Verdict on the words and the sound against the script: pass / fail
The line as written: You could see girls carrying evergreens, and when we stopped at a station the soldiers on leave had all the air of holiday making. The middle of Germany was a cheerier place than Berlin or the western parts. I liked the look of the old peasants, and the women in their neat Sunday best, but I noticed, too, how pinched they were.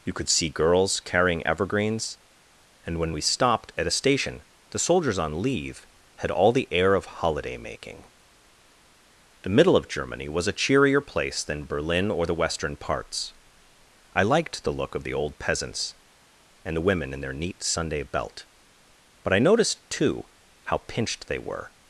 fail